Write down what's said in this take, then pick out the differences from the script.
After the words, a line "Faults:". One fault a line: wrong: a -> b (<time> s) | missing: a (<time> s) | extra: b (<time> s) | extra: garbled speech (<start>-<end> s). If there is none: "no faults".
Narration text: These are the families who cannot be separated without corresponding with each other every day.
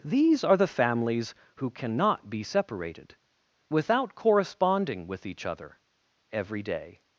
These are the families who cannot be separated without corresponding with each other every day.
Faults:
no faults